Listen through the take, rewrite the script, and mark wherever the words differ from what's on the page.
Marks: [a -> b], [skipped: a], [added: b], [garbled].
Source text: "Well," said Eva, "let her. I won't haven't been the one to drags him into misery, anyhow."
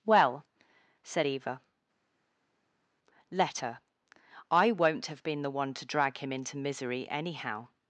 "Well," said Eva, "let her. I won't [haven't -> have] been the one to [drags -> drag] him into misery, anyhow."